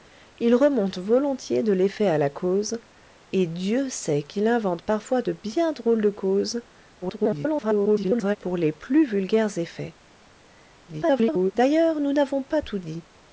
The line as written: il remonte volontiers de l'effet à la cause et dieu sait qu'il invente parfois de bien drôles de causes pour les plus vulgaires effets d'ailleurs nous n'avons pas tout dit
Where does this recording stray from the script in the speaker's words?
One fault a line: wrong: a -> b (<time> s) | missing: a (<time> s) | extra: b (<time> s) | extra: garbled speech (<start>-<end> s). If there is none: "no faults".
extra: garbled speech (7.0-8.4 s)
extra: garbled speech (10.9-11.5 s)